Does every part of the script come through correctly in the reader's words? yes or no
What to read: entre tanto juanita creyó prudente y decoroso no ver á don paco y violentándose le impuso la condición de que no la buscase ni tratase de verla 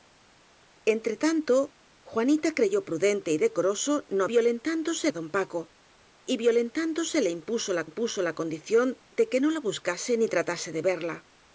no